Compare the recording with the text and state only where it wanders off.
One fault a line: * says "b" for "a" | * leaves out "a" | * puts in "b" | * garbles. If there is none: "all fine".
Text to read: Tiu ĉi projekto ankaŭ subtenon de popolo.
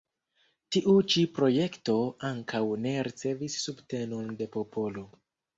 * puts in "ne ricevis"